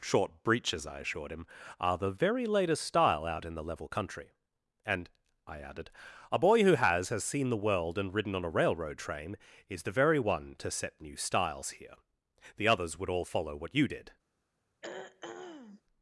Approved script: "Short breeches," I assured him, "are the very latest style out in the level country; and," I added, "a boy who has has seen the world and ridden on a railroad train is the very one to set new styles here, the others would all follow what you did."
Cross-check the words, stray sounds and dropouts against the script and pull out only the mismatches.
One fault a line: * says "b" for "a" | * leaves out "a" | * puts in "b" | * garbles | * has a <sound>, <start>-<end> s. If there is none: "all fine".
* has a throat clearing, 14.8-15.8 s